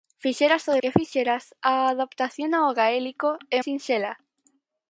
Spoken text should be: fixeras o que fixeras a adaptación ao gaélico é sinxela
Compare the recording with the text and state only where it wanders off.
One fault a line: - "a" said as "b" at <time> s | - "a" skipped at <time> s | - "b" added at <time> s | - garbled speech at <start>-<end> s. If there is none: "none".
none